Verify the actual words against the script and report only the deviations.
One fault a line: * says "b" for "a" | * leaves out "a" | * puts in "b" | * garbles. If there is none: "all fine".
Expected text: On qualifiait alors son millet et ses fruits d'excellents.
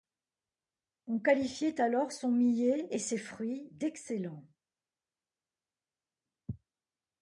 all fine